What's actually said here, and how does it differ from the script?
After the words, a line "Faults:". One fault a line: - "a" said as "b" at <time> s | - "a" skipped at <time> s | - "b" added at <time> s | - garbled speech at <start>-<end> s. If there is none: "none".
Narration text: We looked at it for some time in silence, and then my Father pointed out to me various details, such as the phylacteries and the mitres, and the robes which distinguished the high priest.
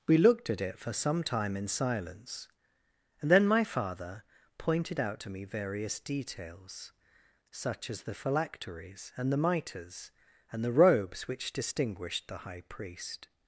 We looked at it for some time in silence, and then my Father pointed out to me various details, such as the phylacteries and the mitres, and the robes which distinguished the high priest.
Faults:
none